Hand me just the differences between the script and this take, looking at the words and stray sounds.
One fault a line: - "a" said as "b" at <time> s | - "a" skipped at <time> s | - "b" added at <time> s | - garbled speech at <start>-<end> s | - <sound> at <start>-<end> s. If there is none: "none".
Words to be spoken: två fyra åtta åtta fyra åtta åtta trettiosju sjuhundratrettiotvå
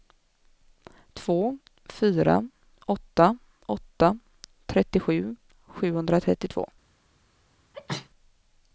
- "fyra åtta åtta" skipped at 4.2 s
- sneeze at 7.7-8.1 s